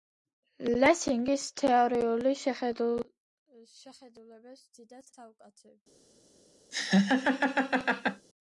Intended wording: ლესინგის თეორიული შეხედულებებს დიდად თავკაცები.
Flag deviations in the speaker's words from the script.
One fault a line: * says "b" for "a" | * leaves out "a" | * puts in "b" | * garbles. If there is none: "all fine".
all fine